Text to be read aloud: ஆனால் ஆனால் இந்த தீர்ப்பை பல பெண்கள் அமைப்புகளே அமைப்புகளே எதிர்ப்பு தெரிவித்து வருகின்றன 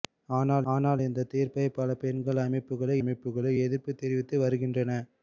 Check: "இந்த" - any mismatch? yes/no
no